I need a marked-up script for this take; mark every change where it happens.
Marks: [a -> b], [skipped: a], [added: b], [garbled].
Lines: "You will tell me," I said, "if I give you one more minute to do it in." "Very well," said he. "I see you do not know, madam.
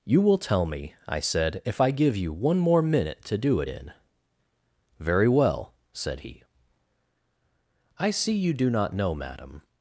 "You will tell me," I said, "if I give you one more minute to do it in." "Very well," said he. "I see you do not know, madam.